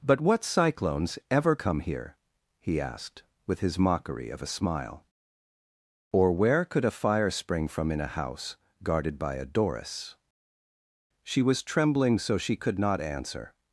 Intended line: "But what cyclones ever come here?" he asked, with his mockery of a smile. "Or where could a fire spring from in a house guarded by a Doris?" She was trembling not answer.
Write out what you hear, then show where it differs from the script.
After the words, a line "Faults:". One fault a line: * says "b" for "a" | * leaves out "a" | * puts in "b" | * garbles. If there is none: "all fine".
"But what cyclones ever come here?" he asked, with his mockery of a smile. "Or where could a fire spring from in a house guarded by a Doris?" She was trembling so she could not answer.
Faults:
* puts in "so she could"